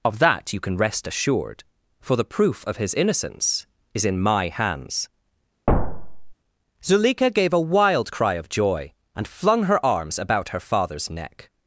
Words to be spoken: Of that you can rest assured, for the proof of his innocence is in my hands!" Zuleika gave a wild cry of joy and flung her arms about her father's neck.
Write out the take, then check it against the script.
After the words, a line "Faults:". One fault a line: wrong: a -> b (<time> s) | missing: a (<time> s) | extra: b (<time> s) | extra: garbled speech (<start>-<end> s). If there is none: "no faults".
Of that you can rest assured, for the proof of his innocence is in my hands!" Zuleika gave a wild cry of joy and flung her arms about her father's neck.
Faults:
no faults